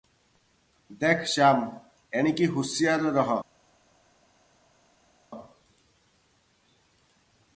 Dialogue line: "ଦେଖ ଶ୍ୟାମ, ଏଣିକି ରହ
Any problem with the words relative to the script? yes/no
yes